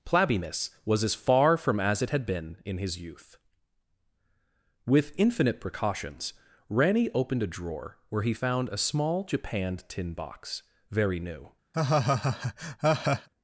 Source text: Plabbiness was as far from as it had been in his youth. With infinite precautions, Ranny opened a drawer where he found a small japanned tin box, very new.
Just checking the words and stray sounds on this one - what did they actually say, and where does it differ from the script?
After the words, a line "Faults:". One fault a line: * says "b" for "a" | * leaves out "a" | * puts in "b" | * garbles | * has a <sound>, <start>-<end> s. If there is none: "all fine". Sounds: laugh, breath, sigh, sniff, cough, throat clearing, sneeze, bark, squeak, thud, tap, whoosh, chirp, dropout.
Plabbiness was as far from as it had been in his youth. With infinite precautions, Ranny opened a drawer where he found a small japanned tin box, very new.
Faults:
* has a laugh, 11.7-13.3 s